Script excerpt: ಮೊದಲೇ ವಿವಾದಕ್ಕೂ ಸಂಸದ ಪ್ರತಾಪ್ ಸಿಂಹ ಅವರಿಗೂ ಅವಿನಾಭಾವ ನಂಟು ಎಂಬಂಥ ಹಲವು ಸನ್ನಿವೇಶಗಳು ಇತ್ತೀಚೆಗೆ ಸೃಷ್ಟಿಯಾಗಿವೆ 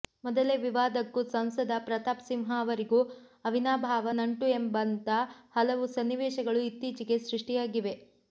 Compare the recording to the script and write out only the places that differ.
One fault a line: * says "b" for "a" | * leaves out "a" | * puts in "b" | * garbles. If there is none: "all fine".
all fine